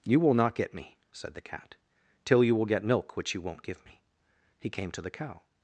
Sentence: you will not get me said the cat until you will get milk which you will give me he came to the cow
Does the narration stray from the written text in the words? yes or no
yes